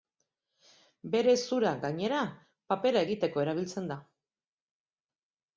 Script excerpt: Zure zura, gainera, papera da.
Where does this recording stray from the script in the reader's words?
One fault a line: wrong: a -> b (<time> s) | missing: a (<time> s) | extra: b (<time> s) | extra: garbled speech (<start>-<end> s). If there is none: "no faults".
wrong: Zure -> Bere (1.1 s)
extra: egiteko erabiltzen (3.1 s)